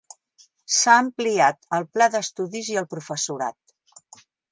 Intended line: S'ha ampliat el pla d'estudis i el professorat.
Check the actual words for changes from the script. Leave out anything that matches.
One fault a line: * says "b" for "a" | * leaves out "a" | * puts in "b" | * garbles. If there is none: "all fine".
all fine